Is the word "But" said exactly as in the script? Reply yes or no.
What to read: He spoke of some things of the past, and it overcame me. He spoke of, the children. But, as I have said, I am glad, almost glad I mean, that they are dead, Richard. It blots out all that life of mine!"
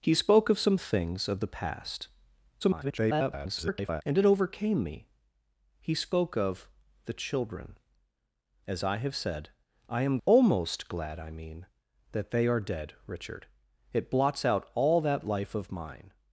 no